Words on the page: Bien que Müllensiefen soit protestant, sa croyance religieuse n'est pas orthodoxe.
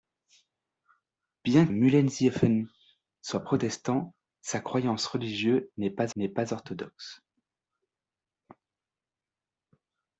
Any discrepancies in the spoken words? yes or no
yes